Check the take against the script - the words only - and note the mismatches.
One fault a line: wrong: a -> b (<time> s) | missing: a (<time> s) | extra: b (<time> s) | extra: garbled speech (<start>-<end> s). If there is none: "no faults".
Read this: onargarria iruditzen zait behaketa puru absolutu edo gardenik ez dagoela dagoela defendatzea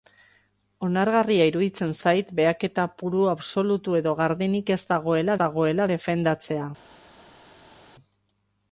no faults